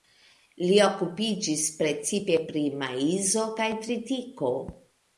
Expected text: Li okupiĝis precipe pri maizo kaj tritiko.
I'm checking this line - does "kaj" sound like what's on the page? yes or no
yes